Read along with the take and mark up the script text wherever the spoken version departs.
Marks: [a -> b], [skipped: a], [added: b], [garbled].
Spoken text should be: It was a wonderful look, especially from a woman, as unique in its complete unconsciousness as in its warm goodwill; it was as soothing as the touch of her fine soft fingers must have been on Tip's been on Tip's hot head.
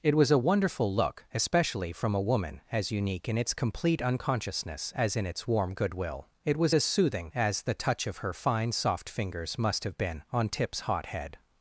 It was a wonderful look, especially from a woman, as unique in its complete unconsciousness as in its warm goodwill; it was as soothing as the touch of her fine soft fingers must have been on Tip's [skipped: been on Tip's] hot head.